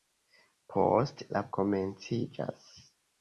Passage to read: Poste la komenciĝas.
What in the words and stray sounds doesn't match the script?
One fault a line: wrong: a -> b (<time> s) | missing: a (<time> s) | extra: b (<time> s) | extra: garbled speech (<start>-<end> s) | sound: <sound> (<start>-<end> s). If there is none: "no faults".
no faults